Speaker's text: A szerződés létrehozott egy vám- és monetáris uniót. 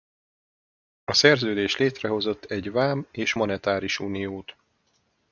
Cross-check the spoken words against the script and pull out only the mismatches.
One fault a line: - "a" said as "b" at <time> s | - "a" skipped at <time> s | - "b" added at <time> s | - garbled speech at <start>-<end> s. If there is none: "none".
none